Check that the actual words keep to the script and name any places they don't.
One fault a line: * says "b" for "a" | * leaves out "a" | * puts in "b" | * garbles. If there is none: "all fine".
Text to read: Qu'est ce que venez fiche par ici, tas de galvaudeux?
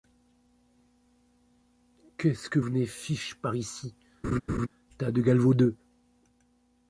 all fine